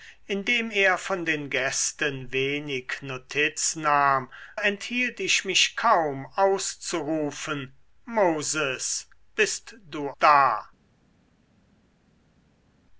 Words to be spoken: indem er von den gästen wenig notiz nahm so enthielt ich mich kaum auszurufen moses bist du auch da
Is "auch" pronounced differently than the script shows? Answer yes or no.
yes